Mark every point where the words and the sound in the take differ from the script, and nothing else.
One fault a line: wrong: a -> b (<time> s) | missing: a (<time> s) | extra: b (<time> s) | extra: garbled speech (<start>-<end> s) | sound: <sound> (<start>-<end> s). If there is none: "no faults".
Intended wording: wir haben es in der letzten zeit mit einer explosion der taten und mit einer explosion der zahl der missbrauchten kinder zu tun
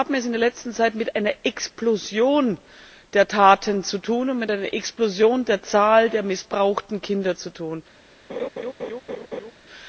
sound: laugh (8.3-9.5 s)